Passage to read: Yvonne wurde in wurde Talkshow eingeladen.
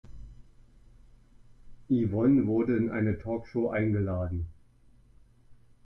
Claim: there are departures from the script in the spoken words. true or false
true